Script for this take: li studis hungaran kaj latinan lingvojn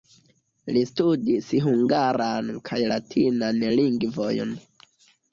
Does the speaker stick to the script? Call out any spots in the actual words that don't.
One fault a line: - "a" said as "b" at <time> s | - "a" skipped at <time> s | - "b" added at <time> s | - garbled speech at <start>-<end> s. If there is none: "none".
none